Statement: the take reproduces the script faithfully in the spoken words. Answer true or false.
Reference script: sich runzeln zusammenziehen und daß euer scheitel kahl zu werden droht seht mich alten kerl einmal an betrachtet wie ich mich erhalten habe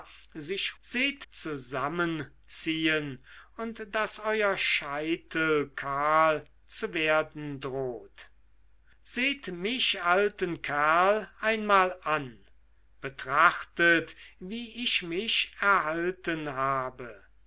false